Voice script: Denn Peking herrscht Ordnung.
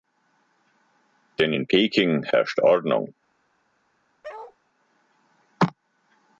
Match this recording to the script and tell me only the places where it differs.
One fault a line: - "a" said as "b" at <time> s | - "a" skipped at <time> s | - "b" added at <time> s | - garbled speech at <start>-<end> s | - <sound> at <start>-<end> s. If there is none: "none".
- "in" added at 1.5 s
- bark at 4.2-4.6 s